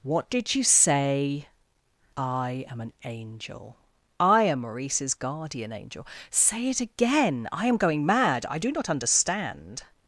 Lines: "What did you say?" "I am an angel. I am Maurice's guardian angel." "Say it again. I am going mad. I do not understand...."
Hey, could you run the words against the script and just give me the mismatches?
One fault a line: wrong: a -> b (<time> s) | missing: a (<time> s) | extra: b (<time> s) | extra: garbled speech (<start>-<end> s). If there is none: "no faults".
no faults